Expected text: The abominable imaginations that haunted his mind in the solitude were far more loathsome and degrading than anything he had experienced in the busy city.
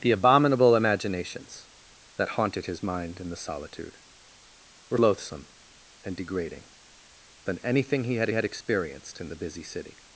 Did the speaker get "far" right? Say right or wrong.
wrong